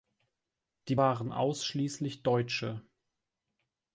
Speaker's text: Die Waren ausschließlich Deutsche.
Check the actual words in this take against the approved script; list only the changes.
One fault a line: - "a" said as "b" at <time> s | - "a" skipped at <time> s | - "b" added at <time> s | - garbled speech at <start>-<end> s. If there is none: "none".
none